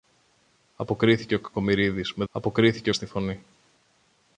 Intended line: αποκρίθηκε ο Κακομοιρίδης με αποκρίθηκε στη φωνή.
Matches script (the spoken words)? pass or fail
pass